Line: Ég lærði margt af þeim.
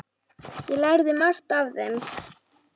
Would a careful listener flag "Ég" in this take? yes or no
no